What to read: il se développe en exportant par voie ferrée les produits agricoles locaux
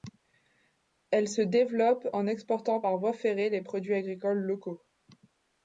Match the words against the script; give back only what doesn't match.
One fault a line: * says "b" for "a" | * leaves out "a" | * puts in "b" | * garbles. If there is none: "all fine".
* says "elle" for "il"